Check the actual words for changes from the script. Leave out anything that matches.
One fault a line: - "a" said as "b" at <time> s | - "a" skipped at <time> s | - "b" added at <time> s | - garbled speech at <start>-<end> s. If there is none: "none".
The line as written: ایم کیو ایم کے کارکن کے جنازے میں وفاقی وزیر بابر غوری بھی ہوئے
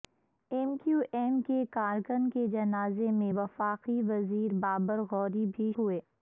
none